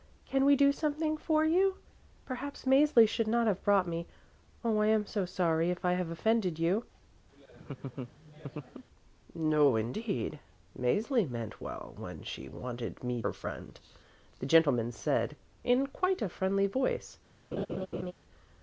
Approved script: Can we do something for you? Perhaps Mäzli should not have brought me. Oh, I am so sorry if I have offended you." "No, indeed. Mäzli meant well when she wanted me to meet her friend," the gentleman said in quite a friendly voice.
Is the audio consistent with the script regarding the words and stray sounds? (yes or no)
no